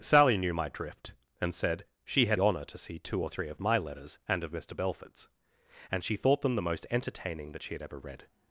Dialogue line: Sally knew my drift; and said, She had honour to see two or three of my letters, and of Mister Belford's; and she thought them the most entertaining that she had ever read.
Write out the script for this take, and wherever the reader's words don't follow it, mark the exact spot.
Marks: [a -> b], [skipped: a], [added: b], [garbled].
Sally knew my drift; and said, She had honour to see two or three of my letters, and of Mister Belford's; and she thought them the most entertaining that she had ever read.